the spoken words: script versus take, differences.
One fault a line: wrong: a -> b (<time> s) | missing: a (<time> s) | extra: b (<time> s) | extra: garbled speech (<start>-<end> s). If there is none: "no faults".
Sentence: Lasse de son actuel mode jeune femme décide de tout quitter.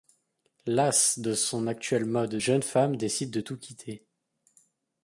no faults